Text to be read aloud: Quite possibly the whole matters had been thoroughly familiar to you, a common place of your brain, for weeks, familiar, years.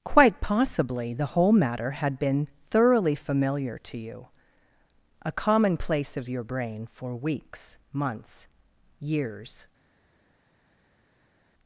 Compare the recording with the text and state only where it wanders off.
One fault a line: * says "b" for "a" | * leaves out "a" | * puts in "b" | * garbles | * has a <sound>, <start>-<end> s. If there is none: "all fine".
* says "matter" for "matters"
* says "months" for "familiar"